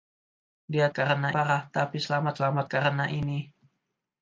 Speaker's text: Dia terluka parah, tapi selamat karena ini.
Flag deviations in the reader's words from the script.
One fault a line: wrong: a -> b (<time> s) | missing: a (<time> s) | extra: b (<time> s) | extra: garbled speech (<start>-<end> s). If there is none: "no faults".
wrong: terluka -> karena (0.9 s)
extra: selamat (2.3 s)